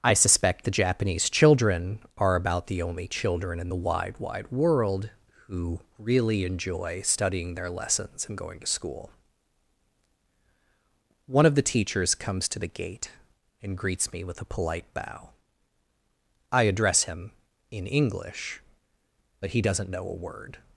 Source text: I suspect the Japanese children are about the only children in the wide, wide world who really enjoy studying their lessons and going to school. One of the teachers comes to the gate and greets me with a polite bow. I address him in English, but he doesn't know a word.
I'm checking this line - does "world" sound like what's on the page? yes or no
yes